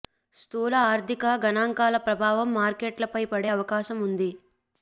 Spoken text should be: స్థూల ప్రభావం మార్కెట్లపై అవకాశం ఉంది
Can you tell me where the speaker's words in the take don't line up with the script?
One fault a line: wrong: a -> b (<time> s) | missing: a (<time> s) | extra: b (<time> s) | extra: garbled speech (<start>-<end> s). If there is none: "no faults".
extra: ఆర్థిక గణాంకాల (0.8 s)
extra: పడే (3.3 s)